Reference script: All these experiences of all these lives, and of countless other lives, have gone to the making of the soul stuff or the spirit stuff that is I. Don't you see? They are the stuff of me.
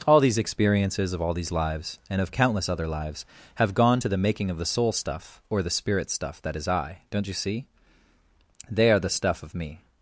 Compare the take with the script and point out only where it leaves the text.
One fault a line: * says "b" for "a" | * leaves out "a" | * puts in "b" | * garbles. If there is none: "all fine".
all fine